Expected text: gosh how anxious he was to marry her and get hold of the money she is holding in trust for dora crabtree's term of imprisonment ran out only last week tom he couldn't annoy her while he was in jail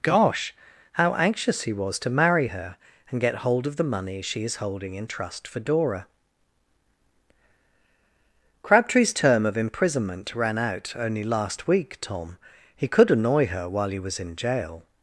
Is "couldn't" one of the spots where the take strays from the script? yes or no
yes